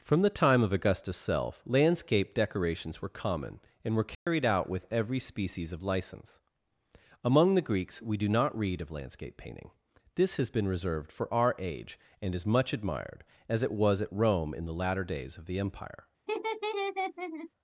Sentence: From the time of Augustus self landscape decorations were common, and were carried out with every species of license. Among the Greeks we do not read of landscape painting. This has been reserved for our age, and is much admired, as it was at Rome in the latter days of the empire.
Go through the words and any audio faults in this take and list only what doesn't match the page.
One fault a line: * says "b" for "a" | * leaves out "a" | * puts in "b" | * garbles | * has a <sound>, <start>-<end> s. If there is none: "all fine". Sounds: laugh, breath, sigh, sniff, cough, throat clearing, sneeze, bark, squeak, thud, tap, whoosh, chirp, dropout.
* has a dropout, 4.1-4.3 s
* has a laugh, 16.3-17.5 s